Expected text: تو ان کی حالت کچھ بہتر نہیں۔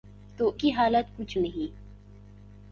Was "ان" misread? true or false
true